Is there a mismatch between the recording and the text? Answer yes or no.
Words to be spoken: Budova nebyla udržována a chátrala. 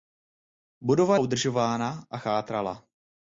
yes